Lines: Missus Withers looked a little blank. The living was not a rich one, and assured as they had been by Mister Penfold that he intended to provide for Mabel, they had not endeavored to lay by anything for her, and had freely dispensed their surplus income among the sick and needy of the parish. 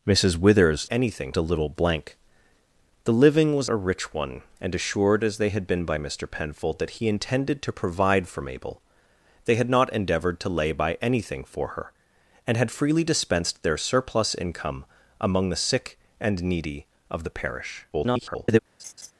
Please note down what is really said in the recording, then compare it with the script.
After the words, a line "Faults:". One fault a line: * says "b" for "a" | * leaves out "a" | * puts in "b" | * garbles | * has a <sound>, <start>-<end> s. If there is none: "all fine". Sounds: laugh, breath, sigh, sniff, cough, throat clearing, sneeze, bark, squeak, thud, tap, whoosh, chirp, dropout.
Missus Withers anything a little blank. The living was a rich one, and assured as they had been by Mister Penfold that he intended to provide for Mabel, they had not endeavored to lay by anything for her, and had freely dispensed their surplus income among the sick and needy of the parish. [garbled]
Faults:
* says "anything" for "looked"
* leaves out "not"
* garbles
* has a laugh, 18.8-19.1 s